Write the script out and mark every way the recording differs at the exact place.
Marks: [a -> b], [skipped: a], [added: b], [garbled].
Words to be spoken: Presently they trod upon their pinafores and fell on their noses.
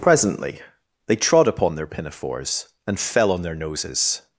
Presently they trod upon their pinafores and fell on their noses.